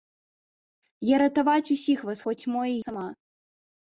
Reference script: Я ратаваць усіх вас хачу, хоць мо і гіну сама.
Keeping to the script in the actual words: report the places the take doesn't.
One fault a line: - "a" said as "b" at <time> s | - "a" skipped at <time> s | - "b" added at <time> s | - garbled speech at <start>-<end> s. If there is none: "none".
- "хачу" skipped at 2.2 s
- "гіну" skipped at 2.8 s